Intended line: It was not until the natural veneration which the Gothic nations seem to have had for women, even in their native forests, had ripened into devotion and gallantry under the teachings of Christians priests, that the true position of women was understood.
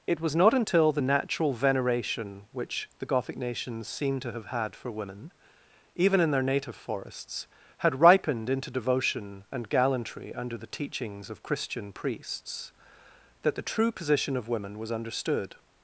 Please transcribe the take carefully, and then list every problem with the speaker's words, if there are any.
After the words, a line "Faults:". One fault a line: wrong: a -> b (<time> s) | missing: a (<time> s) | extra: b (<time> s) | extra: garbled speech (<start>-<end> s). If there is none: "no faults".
It was not until the natural veneration which the Gothic nations seem to have had for women, even in their native forests, had ripened into devotion and gallantry under the teachings of Christian priests, that the true position of women was understood.
Faults:
wrong: Christians -> Christian (11.4 s)